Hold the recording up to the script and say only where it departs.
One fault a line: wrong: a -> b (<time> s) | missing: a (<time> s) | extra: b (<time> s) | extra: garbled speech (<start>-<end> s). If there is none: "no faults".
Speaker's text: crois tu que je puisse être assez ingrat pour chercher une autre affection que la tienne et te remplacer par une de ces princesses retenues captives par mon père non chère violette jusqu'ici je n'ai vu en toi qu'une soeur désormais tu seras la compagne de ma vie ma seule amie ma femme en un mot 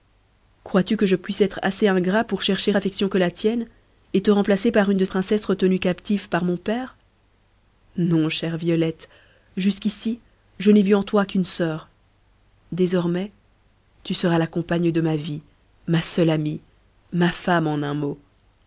missing: une autre (2.7 s)
missing: ces (5.0 s)